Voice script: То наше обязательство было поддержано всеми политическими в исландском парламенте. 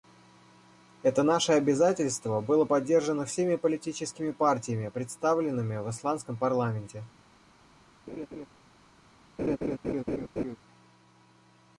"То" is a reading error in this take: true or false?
true